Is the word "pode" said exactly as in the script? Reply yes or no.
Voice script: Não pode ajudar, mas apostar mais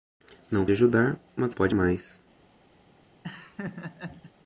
no